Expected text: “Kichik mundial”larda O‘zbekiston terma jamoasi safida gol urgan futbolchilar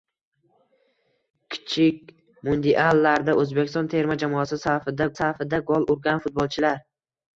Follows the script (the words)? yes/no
no